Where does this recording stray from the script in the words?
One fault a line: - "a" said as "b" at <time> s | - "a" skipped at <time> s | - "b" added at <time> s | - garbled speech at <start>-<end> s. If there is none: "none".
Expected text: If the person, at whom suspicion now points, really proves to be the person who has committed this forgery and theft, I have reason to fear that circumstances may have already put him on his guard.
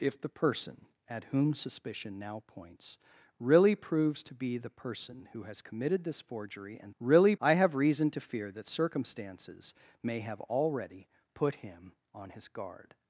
- "theft" said as "really" at 7.0 s